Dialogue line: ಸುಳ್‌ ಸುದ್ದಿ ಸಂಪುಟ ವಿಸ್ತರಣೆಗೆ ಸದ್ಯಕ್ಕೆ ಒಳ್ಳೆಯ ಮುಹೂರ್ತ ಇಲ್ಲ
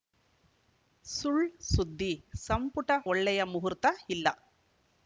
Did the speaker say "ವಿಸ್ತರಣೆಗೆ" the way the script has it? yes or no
no